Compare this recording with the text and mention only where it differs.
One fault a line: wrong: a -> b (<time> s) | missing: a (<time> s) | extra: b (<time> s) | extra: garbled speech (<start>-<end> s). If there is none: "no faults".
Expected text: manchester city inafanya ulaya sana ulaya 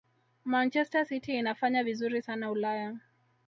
wrong: ulaya -> vizuri (1.8 s)